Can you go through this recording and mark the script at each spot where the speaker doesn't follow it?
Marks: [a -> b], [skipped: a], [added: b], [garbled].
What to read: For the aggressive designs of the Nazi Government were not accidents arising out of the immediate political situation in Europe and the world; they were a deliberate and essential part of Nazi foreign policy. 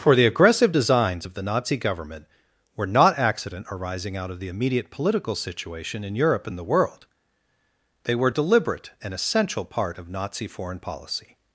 For the aggressive designs of the Nazi Government were not [accidents -> accident] arising out of the immediate political situation in Europe and the world; they were [skipped: a] deliberate and essential part of Nazi foreign policy.